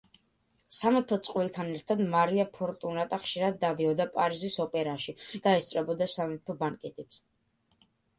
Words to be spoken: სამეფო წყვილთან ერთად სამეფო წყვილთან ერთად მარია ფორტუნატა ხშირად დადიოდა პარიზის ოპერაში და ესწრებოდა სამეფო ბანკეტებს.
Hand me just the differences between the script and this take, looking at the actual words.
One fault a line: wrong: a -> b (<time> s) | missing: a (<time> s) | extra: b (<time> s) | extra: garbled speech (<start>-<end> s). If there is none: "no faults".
missing: სამეფო წყვილთან ერთად (2.0 s)